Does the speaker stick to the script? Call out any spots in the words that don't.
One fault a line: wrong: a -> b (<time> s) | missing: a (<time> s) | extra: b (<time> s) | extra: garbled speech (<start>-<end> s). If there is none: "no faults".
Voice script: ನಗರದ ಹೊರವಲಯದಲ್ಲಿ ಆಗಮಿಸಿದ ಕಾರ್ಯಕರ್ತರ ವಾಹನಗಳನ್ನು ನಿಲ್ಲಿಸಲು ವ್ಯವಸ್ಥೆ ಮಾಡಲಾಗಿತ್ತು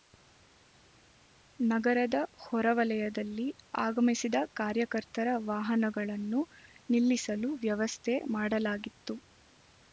no faults